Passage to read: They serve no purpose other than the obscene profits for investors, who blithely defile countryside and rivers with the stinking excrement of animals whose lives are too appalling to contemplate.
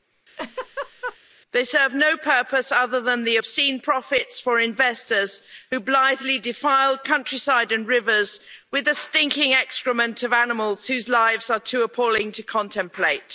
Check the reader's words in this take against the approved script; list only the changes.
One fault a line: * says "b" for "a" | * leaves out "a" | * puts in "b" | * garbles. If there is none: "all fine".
all fine